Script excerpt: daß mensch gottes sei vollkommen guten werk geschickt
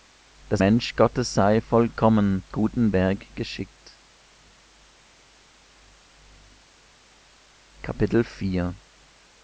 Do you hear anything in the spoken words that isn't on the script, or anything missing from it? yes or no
no